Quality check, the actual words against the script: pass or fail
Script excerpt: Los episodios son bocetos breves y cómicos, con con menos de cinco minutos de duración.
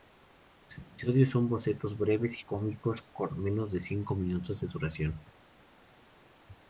fail